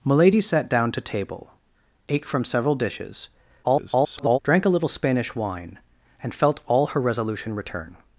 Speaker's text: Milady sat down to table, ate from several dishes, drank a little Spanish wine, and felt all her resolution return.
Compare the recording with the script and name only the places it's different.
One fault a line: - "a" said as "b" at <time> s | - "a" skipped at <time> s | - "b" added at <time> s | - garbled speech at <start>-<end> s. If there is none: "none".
- garbled speech at 3.6-4.4 s